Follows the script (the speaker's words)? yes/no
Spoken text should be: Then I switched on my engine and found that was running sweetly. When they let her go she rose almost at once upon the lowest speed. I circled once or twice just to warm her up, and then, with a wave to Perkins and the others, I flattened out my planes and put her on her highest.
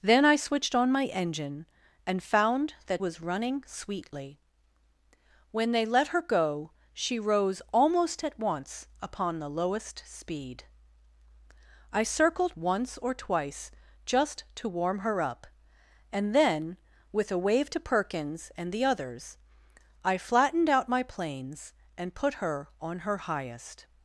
yes